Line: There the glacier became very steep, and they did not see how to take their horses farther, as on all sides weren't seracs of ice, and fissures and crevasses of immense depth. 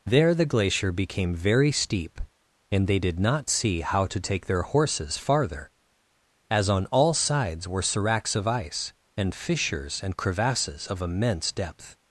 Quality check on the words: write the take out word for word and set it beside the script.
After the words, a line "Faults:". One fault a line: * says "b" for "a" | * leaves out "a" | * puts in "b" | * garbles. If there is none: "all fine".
There the glacier became very steep, and they did not see how to take their horses farther, as on all sides were seracs of ice, and fissures and crevasses of immense depth.
Faults:
* says "were" for "weren't"